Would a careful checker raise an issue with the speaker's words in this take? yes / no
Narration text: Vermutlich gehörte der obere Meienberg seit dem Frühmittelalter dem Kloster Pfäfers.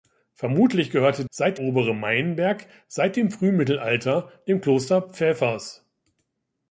yes